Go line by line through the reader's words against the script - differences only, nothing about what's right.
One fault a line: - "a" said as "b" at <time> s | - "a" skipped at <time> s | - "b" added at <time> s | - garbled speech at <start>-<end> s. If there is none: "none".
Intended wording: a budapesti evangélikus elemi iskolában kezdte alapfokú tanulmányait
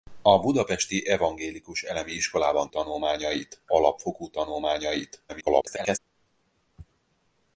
- "kezdte" said as "tanulmányait" at 2.7 s
- garbled speech at 5.3-6.0 s